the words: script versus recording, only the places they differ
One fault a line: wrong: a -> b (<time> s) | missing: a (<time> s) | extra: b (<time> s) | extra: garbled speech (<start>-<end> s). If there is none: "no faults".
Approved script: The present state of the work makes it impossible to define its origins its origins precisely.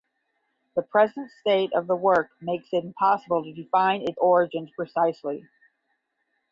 missing: its origins (4.7 s)